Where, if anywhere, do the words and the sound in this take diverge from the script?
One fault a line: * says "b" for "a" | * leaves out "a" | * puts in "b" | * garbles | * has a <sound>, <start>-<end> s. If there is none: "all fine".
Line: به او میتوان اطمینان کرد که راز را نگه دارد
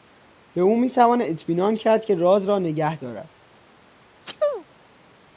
* has a sneeze, 4.2-4.6 s